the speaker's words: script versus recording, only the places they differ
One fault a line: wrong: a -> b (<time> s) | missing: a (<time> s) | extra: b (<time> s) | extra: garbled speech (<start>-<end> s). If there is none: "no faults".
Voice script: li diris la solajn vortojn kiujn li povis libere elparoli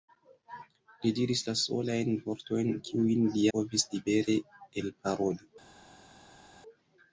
no faults